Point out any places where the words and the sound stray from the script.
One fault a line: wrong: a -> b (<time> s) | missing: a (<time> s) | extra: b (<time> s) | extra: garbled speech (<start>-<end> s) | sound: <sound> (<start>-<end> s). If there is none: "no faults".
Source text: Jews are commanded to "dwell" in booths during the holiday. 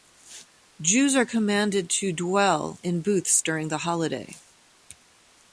no faults